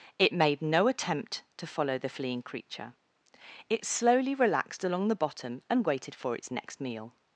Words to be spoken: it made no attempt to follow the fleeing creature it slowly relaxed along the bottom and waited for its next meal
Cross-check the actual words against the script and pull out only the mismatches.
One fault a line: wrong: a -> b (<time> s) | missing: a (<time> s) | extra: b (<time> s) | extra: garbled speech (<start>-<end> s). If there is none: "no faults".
no faults